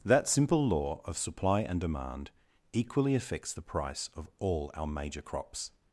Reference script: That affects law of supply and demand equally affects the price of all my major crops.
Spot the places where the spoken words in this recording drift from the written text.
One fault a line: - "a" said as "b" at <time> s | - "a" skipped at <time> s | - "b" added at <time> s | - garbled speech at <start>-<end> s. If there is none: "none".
- "affects" said as "simple" at 0.3 s
- "my" said as "our" at 4.7 s